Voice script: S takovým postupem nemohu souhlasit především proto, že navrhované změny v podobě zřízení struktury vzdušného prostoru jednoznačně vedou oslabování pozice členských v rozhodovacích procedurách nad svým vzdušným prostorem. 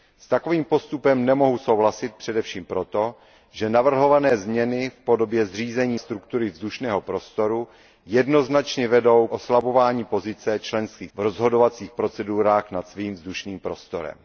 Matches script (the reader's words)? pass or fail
pass